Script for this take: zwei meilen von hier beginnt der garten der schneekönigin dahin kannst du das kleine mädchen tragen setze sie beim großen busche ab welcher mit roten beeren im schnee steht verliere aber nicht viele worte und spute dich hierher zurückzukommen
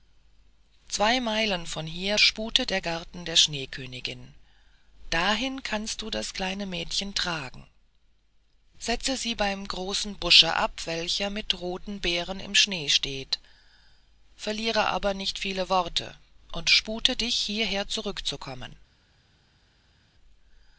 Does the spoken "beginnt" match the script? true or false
false